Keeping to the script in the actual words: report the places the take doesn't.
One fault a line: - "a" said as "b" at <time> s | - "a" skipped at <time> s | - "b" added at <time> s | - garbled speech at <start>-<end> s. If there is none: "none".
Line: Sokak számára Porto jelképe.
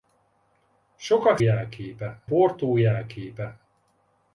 - "számára" said as "jelképe" at 1.4 s